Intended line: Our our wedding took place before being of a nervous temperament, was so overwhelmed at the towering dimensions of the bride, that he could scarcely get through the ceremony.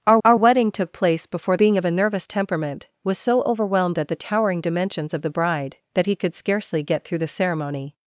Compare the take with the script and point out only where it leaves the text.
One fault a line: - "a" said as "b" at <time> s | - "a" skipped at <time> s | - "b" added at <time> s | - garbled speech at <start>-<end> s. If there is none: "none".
none